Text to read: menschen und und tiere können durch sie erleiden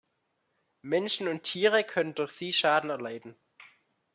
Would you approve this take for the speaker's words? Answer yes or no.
no